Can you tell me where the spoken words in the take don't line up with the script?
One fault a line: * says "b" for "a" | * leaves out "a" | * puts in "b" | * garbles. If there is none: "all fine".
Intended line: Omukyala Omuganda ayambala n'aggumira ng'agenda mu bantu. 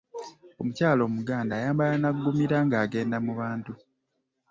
all fine